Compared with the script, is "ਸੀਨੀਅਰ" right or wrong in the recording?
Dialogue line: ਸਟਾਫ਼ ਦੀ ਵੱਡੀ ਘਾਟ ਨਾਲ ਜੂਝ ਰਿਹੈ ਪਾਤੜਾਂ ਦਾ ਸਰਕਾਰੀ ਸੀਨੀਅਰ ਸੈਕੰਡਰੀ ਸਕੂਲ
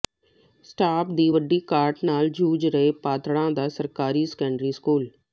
wrong